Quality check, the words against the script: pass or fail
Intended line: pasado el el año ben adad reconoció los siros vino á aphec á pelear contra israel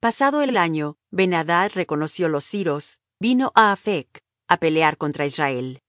pass